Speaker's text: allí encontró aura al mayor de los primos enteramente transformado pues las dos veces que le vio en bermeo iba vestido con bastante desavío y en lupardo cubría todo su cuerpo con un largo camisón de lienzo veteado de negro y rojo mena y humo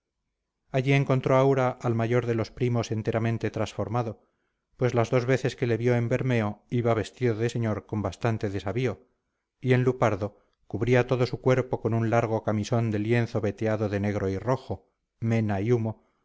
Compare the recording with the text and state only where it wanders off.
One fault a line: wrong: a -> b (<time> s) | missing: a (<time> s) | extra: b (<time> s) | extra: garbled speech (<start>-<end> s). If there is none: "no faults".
extra: de señor (7.3 s)